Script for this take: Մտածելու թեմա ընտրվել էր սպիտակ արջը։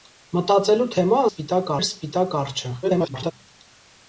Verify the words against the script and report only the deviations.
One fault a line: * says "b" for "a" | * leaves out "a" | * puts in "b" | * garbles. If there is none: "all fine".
* says "սպիտակ" for "ընտրվել"
* garbles